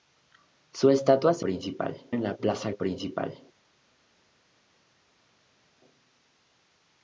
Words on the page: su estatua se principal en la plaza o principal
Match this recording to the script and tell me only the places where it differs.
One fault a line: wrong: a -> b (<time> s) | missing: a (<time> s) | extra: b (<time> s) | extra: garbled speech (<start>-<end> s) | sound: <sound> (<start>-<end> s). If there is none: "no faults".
no faults